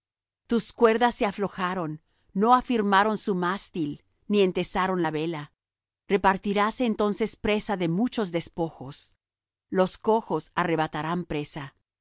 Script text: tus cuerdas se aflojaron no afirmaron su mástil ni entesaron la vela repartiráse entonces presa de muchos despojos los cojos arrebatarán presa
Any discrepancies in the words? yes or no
no